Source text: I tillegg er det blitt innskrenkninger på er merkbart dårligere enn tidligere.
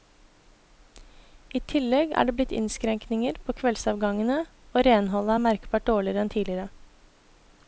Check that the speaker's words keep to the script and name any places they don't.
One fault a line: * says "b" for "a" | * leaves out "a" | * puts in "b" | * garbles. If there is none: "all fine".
* puts in "kveldsavgangene og renholdet"